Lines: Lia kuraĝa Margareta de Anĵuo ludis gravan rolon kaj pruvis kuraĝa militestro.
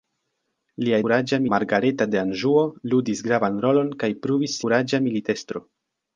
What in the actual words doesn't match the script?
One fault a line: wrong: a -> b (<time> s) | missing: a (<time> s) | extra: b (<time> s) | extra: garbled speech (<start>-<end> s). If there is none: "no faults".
no faults